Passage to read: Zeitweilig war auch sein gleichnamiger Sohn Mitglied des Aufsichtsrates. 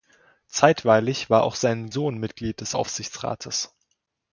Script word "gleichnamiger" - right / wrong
wrong